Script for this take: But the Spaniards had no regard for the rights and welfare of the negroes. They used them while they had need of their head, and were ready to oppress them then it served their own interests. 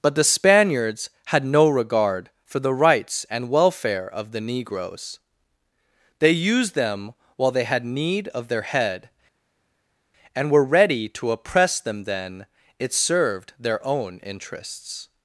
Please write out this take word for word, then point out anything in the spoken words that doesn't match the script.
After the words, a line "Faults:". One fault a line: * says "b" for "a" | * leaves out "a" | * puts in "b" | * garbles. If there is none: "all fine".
But the Spaniards had no regard for the rights and welfare of the negroes. They used them while they had need of their head, and were ready to oppress them then it served their own interests.
Faults:
all fine